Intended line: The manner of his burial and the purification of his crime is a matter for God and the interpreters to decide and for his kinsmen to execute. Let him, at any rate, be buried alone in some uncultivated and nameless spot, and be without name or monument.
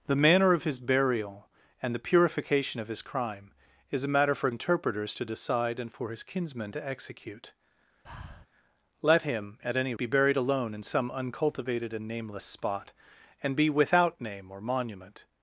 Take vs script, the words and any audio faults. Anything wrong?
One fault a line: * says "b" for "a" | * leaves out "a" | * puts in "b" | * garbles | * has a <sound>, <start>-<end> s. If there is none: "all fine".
* leaves out "God and the"
* has a breath, 8.0-8.5 s
* leaves out "rate"